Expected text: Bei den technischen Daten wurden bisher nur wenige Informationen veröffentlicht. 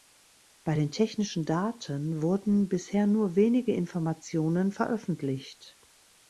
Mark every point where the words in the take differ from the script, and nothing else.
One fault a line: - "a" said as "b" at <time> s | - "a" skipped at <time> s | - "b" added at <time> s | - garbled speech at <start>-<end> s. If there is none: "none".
none